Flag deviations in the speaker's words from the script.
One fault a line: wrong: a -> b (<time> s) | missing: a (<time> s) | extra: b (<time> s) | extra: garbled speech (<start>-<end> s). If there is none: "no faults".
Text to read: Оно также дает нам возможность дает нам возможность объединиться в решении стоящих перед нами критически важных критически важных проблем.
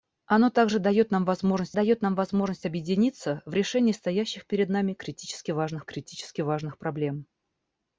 no faults